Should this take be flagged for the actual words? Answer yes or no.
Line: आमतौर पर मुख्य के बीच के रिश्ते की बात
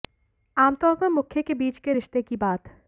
no